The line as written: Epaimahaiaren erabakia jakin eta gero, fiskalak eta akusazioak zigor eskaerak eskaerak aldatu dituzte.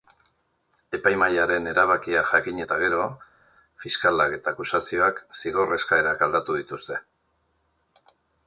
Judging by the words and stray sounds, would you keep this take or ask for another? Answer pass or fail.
fail